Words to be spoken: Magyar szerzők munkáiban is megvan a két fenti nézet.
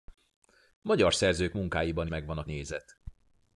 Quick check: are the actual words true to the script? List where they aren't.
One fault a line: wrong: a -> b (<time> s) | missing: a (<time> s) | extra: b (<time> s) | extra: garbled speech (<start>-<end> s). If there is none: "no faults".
missing: is (2.1 s)
missing: két fenti (2.4 s)